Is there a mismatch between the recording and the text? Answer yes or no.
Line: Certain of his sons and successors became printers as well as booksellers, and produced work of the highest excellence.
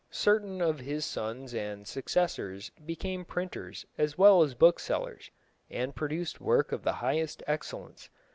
no